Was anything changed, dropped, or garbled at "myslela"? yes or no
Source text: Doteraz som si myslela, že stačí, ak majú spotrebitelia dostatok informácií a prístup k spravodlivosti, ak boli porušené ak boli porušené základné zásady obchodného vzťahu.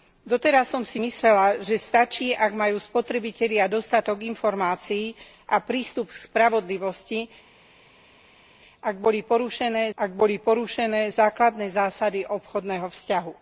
no